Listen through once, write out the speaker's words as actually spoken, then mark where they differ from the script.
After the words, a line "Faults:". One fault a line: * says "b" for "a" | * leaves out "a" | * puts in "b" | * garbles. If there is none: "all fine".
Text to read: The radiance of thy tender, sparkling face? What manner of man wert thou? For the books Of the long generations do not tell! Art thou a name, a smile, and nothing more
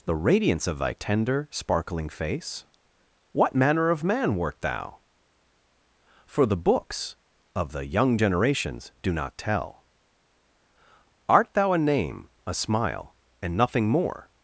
The radiance of thy tender, sparkling face? What manner of man wert thou? For the books Of the young generations do not tell! Art thou a name, a smile, and nothing more
Faults:
* says "young" for "long"